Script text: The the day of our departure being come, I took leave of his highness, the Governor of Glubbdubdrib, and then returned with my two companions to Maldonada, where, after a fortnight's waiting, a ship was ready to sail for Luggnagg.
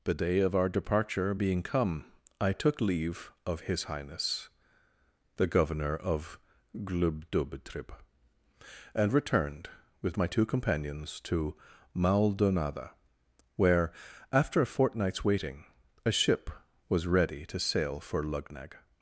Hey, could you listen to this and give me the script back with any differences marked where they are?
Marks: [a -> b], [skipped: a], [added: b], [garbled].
The [skipped: the] day of our departure being come, I took leave of his highness, the Governor of Glubbdubdrib, and [skipped: then] returned with my two companions to Maldonada, where, after a fortnight's waiting, a ship was ready to sail for Luggnagg.